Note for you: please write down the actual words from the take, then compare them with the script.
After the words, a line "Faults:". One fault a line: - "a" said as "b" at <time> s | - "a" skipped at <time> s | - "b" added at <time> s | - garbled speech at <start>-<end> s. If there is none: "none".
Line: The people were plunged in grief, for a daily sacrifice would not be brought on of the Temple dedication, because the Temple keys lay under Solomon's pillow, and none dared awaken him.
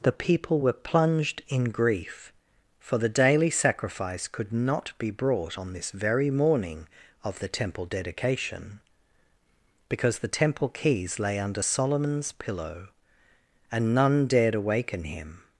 The people were plunged in grief, for the daily sacrifice could not be brought on this very morning of the Temple dedication, because the Temple keys lay under Solomon's pillow, and none dared awaken him.
Faults:
- "a" said as "the" at 3.0 s
- "would" said as "could" at 4.3 s
- "this very morning" added at 5.7 s